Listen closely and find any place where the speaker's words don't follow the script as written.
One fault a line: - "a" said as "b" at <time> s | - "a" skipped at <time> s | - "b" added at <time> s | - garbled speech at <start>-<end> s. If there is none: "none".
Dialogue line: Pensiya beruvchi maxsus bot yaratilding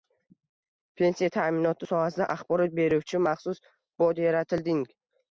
- "ta'minoti sohasida axborot" added at 1.3 s